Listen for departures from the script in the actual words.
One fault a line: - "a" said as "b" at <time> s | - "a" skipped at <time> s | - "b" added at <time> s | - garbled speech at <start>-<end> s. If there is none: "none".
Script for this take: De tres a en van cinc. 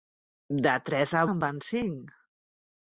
none